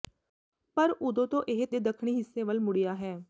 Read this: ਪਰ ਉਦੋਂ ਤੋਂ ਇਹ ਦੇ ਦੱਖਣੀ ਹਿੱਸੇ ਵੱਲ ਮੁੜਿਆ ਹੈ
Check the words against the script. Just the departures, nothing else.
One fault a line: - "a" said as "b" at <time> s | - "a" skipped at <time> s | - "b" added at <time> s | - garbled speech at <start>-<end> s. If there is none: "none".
none